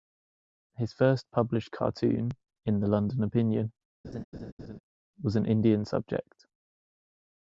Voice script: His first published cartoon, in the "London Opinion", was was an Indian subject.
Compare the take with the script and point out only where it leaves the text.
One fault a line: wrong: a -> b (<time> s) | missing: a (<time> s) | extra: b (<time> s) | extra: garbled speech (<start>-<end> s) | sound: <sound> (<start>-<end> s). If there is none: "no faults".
sound: laugh (4.0-4.8 s)
missing: was (5.4 s)